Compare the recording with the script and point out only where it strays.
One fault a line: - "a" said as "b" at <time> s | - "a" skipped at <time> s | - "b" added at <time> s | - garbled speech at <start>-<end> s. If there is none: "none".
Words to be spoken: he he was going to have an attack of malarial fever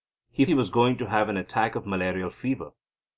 none